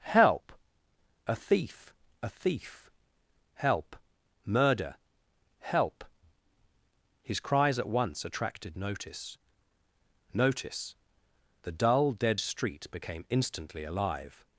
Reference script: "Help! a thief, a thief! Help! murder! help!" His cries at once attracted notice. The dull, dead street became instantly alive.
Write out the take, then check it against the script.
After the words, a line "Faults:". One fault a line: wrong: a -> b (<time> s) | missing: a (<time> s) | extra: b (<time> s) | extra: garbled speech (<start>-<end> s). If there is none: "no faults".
"Help! a thief, a thief! Help! murder! help!" His cries at once attracted notice notice. The dull, dead street became instantly alive.
Faults:
extra: notice (10.3 s)